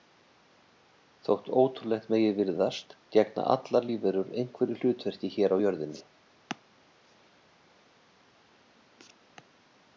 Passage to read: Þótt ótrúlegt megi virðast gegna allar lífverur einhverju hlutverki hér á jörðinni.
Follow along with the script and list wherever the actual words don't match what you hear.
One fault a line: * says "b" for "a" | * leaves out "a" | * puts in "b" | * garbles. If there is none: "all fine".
all fine